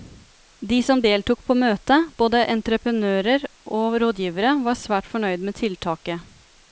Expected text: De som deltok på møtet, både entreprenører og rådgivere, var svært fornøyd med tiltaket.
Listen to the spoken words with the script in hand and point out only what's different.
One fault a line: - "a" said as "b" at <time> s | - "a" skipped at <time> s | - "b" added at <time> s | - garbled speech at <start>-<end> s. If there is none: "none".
none